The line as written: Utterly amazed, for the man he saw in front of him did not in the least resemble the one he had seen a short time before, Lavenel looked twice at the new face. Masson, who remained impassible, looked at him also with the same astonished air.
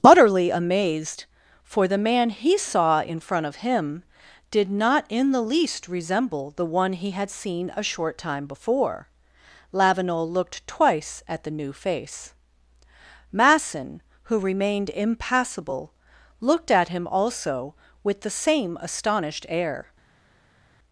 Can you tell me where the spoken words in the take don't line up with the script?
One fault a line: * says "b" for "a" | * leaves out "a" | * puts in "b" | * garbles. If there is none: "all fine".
all fine